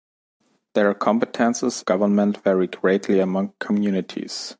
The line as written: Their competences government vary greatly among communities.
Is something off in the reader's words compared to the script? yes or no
no